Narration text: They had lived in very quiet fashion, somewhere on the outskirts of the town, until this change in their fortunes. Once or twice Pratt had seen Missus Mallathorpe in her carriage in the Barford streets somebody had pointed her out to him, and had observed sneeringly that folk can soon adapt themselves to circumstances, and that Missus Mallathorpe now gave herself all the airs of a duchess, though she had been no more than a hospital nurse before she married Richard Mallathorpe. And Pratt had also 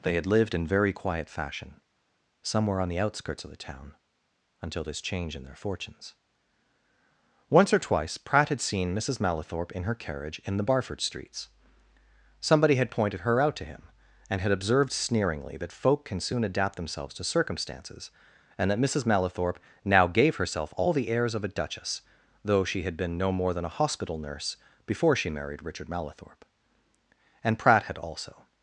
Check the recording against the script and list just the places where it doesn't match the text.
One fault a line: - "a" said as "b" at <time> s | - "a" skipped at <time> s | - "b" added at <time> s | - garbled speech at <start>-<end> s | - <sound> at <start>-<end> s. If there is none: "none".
none